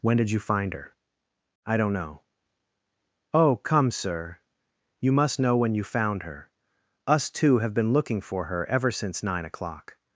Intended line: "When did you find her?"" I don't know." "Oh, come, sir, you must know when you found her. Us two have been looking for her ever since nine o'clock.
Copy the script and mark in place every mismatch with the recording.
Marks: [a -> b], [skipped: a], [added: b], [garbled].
"When did you find her?"" I don't know." "Oh, come, sir, you must know when you found her. Us two have been looking for her ever since nine o'clock.